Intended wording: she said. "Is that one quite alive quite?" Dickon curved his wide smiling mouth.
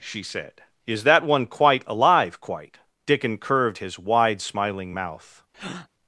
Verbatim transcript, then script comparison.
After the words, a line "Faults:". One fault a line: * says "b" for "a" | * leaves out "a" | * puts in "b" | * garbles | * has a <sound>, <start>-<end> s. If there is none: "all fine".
she said. "Is that one quite alive quite?" Dickon curved his wide smiling mouth.
Faults:
* has a breath, 5.5-5.9 s